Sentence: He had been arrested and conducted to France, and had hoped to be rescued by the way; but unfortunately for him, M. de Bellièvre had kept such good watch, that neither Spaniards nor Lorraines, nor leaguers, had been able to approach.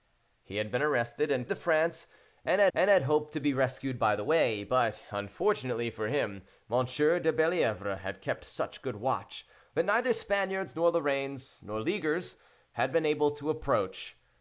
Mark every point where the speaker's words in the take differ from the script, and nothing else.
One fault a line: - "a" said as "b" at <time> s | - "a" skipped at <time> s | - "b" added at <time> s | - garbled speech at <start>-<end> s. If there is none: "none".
- "conducted" skipped at 1.5 s
- "and had" added at 2.7 s